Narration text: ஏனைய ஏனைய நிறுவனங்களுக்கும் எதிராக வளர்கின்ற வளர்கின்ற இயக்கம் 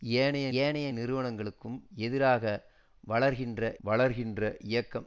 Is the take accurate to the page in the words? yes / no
yes